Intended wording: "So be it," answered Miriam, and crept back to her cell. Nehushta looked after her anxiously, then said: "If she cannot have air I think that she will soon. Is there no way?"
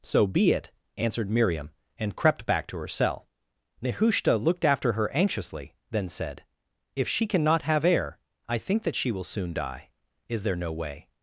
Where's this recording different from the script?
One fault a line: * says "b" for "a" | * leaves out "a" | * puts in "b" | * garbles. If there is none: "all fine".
* puts in "die"